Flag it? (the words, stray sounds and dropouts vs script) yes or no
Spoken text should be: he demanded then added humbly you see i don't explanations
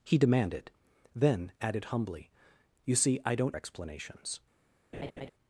yes